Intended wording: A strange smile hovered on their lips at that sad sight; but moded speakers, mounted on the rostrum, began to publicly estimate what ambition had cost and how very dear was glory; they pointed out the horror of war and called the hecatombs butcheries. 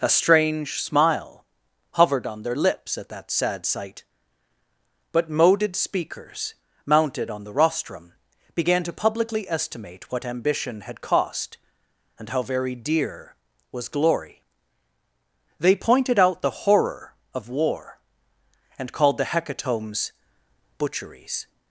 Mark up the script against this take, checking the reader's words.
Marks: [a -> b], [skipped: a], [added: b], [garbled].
A strange smile hovered on their lips at that sad sight; but moded speakers, mounted on the rostrum, began to publicly estimate what ambition had cost and how very dear was glory; they pointed out the horror of war and called the hecatombs butcheries.